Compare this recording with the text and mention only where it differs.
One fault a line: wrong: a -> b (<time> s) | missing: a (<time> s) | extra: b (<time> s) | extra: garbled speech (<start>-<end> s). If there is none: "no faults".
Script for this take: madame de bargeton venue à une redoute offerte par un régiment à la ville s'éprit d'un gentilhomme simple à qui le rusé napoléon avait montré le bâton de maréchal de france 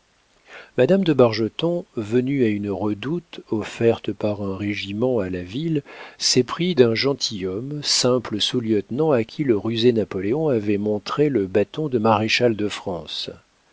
extra: sous lieutenant (8.4 s)